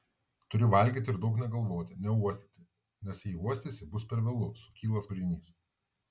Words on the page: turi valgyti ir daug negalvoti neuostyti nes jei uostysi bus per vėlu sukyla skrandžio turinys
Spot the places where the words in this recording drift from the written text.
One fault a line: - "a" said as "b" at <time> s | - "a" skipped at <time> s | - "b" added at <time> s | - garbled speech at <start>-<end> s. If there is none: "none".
- "skrandžio" skipped at 5.1 s